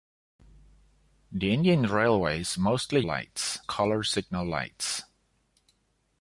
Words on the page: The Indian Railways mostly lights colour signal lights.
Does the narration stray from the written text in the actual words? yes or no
no